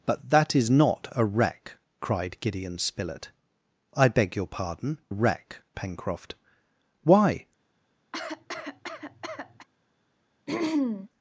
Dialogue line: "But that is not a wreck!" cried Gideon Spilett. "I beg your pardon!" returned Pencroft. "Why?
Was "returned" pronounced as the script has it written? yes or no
no